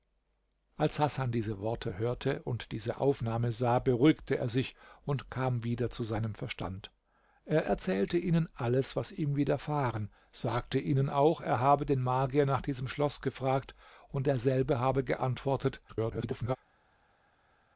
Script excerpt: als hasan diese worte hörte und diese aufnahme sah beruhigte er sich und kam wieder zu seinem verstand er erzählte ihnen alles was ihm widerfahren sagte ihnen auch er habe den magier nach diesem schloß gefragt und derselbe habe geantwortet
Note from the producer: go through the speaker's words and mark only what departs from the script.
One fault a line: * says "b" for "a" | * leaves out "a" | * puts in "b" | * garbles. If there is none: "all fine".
* garbles